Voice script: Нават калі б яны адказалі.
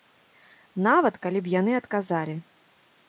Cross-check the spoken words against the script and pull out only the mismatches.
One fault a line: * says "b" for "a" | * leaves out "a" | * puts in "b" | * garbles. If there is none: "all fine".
all fine